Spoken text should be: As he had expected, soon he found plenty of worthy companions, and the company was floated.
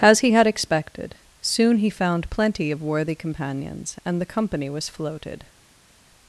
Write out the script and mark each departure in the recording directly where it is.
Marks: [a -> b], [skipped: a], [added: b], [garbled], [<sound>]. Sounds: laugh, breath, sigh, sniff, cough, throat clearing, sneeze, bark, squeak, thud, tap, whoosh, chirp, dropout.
As he had expected, soon he found plenty of worthy companions, and the company was floated.